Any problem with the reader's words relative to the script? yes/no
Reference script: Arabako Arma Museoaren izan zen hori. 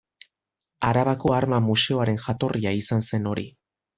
yes